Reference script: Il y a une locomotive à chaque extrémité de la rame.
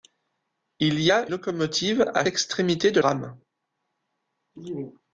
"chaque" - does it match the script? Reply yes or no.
no